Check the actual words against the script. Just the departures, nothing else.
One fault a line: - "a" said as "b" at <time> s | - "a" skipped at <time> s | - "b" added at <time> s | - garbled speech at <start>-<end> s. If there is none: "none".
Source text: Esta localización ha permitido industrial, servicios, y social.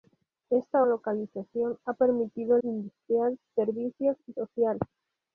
none